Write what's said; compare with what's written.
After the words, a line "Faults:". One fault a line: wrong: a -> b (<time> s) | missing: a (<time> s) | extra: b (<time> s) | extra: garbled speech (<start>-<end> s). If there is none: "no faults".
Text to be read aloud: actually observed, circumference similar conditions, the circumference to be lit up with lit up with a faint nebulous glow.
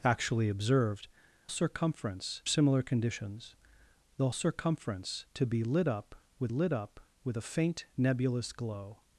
actually observed, circumference similar conditions, the circumference to be lit up with lit up with a faint nebulous glow.
Faults:
no faults